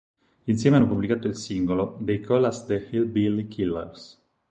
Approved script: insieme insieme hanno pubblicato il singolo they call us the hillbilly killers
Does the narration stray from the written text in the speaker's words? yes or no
yes